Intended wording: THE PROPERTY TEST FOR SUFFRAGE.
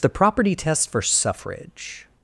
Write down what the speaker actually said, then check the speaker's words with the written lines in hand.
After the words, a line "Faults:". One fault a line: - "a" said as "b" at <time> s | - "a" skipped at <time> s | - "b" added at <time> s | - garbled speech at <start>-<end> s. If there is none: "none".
THE PROPERTY TEST FOR SUFFRAGE.
Faults:
none